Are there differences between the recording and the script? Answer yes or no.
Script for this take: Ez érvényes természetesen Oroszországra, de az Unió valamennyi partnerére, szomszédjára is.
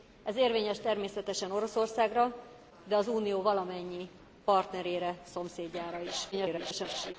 yes